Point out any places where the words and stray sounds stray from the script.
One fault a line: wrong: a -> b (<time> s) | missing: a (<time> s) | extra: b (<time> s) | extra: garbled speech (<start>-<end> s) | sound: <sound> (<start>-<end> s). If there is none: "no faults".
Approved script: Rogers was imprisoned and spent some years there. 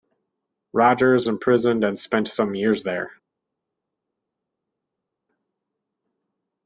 missing: was (1.3 s)